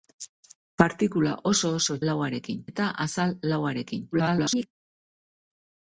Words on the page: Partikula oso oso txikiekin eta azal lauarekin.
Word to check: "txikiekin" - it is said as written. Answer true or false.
false